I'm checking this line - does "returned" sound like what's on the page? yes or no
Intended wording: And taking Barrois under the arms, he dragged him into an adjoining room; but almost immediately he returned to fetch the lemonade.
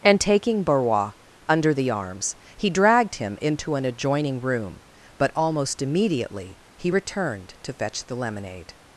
yes